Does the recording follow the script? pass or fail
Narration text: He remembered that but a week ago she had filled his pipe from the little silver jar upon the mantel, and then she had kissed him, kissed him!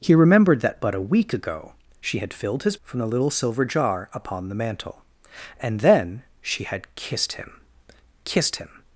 fail